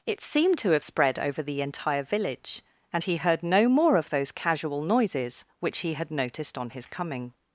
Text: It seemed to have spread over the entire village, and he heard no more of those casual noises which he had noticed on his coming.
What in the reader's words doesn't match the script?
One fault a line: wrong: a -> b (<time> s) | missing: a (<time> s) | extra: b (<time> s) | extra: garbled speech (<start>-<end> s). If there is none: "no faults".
no faults